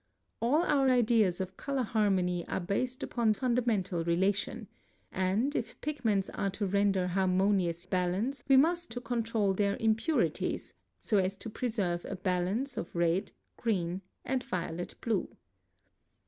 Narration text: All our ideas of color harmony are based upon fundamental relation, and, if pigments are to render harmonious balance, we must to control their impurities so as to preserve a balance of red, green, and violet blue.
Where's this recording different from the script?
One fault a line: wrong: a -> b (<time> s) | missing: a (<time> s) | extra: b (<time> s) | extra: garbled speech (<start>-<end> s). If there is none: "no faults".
no faults